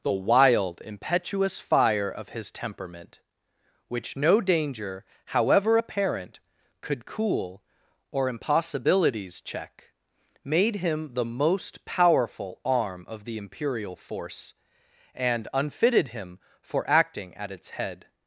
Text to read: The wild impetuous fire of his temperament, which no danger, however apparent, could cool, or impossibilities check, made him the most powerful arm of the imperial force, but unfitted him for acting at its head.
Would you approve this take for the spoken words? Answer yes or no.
no